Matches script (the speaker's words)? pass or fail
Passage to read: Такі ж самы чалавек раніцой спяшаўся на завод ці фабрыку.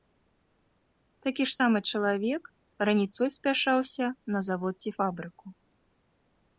pass